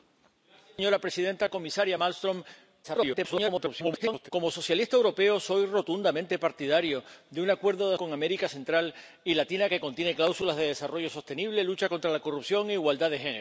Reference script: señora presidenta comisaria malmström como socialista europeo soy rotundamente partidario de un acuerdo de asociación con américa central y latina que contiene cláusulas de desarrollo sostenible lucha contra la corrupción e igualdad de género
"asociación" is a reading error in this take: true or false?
true